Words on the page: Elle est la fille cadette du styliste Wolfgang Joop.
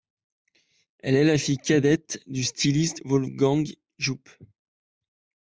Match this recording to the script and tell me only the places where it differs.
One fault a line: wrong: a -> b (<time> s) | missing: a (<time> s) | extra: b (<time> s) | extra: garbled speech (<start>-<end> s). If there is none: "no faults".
no faults